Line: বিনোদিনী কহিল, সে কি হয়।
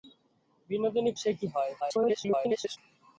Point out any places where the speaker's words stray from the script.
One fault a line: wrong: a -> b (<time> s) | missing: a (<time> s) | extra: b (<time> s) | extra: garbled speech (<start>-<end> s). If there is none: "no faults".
missing: কহিল (1.1 s)
extra: garbled speech (1.8-2.8 s)